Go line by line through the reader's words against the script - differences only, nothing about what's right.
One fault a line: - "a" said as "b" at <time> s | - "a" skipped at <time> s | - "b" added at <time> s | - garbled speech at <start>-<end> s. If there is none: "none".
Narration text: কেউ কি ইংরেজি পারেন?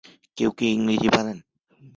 none